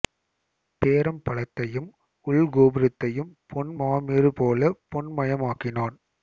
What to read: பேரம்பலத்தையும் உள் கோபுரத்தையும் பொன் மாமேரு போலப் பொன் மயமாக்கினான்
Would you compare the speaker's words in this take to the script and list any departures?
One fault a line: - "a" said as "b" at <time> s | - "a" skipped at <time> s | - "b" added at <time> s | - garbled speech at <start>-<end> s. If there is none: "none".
none